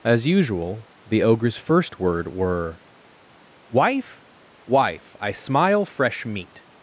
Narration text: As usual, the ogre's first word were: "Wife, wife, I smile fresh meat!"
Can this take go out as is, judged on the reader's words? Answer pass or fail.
pass